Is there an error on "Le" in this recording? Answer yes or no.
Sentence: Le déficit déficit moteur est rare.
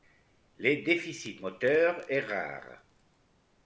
no